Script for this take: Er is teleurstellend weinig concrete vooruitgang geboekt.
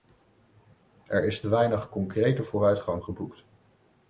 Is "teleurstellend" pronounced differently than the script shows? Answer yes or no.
yes